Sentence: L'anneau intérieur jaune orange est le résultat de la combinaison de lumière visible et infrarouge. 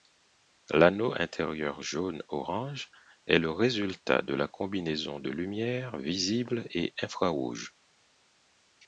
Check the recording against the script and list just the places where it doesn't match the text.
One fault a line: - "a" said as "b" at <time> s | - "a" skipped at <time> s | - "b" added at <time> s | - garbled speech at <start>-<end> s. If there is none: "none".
none